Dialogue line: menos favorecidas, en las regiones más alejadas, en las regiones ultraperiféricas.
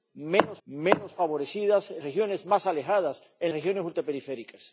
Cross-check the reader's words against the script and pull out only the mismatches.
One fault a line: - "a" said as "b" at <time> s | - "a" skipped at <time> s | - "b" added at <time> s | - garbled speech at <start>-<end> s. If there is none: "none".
- "menos" added at 0.6 s
- "las" skipped at 2.0 s
- "las" skipped at 3.5 s